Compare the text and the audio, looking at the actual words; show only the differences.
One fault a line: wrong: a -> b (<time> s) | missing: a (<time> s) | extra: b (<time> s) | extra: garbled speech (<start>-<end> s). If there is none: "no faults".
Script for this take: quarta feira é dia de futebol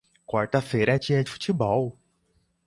no faults